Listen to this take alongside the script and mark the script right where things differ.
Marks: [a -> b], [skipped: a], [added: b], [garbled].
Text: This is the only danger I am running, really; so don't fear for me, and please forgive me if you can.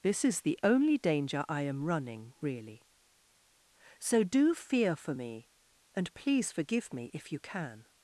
This is the only danger I am running, really; so [don't -> do] fear for me, and please forgive me if you can.